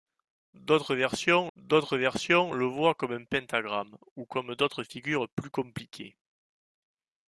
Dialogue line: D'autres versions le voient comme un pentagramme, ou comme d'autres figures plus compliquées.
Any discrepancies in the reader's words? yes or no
yes